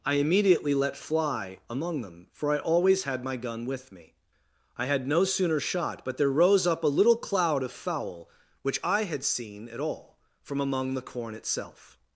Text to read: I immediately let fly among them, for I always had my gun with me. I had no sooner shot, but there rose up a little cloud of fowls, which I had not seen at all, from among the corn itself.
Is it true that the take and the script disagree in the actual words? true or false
true